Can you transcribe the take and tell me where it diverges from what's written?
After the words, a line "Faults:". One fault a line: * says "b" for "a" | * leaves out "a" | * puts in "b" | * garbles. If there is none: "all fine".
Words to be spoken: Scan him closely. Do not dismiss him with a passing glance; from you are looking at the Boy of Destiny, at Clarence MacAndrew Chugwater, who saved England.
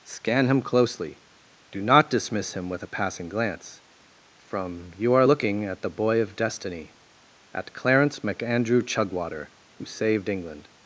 Scan him closely. Do not dismiss him with a passing glance; from you are looking at the Boy of Destiny, at Clarence MacAndrew Chugwater, who saved England.
Faults:
all fine